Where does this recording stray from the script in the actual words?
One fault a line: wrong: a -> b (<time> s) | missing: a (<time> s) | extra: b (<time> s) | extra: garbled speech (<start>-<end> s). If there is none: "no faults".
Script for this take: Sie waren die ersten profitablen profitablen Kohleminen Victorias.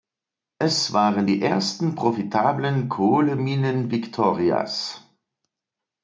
wrong: Sie -> Es (0.6 s)
missing: profitablen (2.9 s)